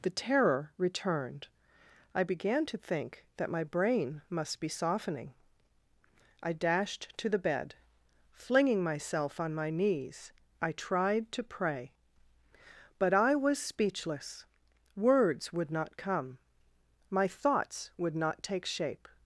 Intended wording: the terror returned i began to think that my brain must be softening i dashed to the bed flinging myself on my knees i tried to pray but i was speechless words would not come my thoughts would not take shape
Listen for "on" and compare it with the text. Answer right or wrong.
right